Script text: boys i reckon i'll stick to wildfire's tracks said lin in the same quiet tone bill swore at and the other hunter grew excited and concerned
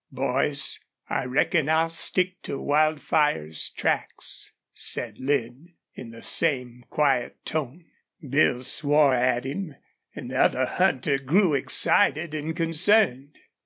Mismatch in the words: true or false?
true